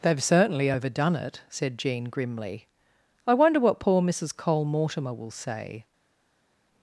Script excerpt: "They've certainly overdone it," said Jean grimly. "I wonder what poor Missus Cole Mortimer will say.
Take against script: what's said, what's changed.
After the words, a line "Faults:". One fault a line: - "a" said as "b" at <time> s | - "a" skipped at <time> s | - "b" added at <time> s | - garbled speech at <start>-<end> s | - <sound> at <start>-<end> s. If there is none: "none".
"They've certainly overdone it," said Jean grimly. "I wonder what poor Missus Cole Mortimer will say.
Faults:
none